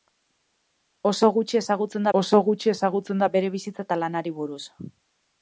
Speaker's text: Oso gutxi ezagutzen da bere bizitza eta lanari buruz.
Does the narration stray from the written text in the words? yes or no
yes